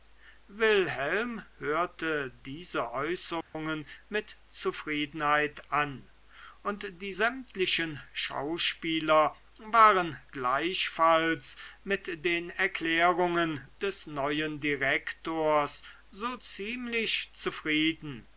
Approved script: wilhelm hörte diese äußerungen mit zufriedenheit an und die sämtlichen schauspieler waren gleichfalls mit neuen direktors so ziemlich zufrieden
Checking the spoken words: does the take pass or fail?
fail